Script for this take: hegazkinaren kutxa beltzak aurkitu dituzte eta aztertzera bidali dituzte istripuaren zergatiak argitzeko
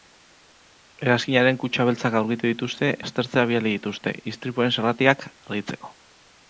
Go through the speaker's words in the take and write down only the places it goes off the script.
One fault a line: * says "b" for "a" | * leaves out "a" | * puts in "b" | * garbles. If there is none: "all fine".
* leaves out "eta"